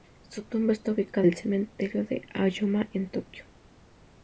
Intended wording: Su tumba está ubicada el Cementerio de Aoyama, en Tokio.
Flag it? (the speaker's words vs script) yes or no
no